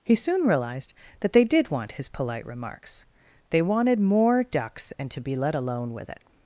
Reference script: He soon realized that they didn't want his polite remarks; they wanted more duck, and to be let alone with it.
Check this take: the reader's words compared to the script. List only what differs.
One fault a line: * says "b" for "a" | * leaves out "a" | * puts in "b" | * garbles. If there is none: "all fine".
* says "did" for "didn't"
* says "ducks" for "duck"